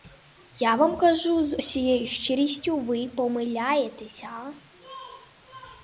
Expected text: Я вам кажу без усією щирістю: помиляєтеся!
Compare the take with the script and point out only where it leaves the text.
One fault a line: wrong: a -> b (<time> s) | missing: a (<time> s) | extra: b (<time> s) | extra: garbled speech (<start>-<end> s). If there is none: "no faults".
wrong: без -> з (1.4 s)
extra: ви (2.8 s)